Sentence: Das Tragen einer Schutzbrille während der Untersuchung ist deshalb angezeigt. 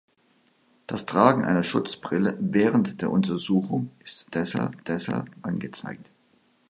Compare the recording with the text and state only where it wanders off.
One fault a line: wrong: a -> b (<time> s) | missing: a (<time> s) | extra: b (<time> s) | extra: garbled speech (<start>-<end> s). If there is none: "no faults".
extra: deshalb (4.9 s)